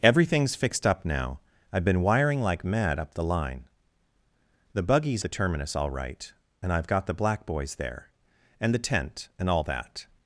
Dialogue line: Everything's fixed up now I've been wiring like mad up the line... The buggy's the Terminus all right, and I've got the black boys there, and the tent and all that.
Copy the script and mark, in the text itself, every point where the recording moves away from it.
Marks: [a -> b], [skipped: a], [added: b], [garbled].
Everything's fixed up now I've been wiring like mad up the line... The buggy's the Terminus all right, and I've got the black boys there, and the tent and all that.